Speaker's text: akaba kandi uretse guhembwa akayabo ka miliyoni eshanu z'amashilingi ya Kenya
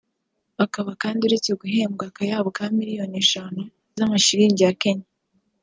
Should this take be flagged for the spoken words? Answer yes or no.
no